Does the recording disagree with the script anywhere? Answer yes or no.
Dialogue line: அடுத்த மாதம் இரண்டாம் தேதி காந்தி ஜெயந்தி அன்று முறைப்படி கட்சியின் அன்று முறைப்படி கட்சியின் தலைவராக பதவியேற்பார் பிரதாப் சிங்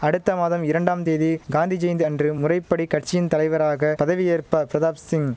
yes